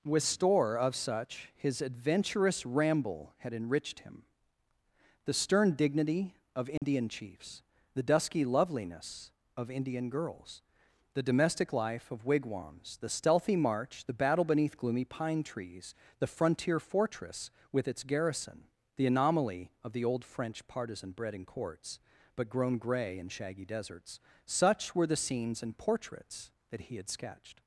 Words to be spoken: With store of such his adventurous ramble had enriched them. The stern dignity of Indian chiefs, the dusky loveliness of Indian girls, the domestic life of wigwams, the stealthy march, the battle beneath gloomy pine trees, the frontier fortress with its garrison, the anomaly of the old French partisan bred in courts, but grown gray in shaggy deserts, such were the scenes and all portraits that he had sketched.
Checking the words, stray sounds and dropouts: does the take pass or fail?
fail